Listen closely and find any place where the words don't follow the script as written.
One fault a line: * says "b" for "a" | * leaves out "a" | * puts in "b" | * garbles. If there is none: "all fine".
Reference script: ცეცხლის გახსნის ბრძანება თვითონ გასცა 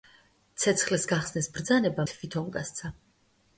all fine